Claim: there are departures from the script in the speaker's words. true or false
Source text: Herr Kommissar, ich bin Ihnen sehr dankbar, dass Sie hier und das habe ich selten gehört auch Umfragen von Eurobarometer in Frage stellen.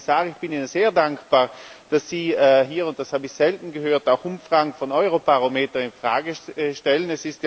false